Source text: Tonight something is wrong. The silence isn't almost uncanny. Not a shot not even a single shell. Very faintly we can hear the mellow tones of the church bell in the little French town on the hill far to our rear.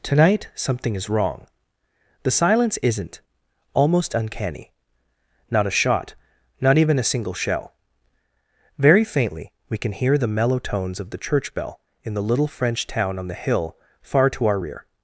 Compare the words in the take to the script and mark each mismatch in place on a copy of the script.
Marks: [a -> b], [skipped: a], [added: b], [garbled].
Tonight something is wrong. The silence isn't almost uncanny. Not a shot not even a single shell. Very faintly we can hear the mellow tones of the church bell in the little French town on the hill far to our rear.